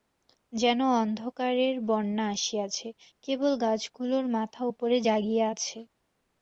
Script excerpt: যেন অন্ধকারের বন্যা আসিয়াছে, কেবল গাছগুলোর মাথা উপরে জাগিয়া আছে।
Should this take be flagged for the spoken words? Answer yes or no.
no